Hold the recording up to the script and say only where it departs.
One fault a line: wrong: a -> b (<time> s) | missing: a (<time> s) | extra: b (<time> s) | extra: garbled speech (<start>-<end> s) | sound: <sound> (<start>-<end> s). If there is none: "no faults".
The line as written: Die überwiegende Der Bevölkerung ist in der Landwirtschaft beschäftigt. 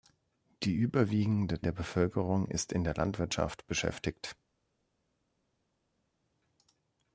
no faults